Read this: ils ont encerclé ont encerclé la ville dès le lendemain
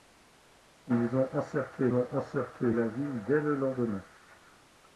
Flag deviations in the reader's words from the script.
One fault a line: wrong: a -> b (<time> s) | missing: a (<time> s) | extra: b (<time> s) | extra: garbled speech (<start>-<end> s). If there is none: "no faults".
no faults